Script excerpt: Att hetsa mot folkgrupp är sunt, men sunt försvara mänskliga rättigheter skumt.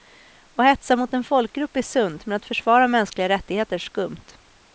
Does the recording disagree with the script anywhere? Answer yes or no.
yes